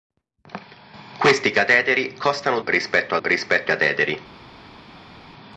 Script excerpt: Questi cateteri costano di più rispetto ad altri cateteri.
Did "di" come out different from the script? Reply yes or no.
yes